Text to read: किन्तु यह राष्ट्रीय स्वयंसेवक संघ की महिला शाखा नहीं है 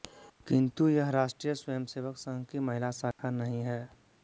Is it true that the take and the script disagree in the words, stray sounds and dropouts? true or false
true